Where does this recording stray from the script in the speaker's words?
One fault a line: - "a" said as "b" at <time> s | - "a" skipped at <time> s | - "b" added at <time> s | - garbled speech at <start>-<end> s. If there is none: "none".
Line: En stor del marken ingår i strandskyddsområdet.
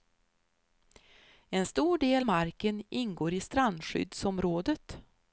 none